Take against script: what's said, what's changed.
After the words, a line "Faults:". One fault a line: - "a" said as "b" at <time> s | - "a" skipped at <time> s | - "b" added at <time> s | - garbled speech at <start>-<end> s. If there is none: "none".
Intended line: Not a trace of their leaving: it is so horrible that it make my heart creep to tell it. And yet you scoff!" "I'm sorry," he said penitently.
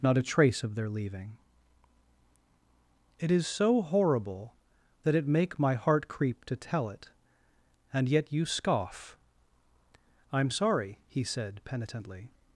Not a trace of their leaving: it is so horrible that it make my heart creep to tell it. And yet you scoff!" "I'm sorry," he said penitently.
Faults:
none